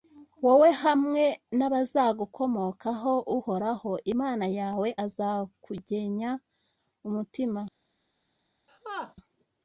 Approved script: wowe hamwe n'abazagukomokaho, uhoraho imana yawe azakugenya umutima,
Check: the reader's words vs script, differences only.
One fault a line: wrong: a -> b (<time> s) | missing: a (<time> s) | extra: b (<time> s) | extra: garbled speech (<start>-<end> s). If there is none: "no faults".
no faults